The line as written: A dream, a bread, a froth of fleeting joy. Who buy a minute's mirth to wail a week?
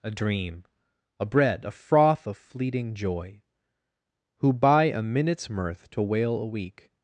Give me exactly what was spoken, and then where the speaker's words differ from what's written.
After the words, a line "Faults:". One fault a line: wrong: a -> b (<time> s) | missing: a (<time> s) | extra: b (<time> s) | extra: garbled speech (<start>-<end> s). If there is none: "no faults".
A dream, a bread, a froth of fleeting joy. Who buy a minute's mirth to wail a week?
Faults:
no faults